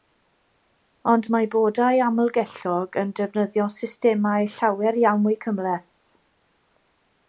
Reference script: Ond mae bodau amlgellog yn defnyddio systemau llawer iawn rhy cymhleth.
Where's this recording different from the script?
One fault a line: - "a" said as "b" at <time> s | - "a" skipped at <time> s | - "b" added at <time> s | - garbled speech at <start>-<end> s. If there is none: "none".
- "rhy" said as "mwy" at 5.3 s